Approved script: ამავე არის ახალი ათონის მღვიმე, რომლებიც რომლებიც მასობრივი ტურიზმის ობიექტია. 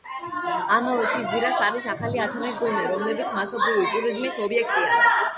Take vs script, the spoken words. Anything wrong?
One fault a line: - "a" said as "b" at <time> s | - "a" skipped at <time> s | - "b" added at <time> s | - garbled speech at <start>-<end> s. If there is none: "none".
- "მთის ძირას" added at 1.1 s
- "რომლებიც" skipped at 3.3 s